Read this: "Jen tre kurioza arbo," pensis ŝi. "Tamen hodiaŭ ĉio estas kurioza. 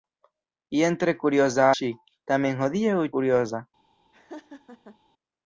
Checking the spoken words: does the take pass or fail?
fail